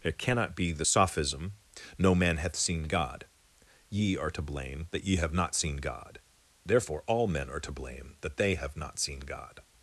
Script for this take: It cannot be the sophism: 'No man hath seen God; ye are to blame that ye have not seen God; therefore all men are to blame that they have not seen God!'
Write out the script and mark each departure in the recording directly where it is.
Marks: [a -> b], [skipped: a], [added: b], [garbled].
It cannot be the sophism: 'No man hath seen God; ye are to blame that ye have not seen God; therefore all men are to blame that they have not seen God!'